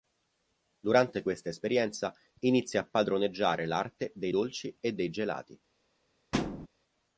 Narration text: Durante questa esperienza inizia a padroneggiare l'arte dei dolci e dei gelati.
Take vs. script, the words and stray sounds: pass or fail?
fail